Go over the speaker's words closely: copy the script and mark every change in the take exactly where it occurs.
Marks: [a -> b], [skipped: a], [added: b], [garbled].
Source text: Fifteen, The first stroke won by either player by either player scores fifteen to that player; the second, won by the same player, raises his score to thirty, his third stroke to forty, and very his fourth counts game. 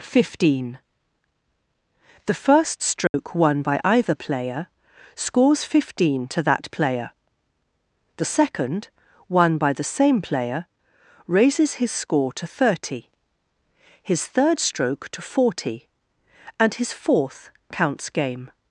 Fifteen, The first stroke won by either player [skipped: by either player] scores fifteen to that player; the second, won by the same player, raises his score to thirty, his third stroke to forty, and [skipped: very] his fourth counts game.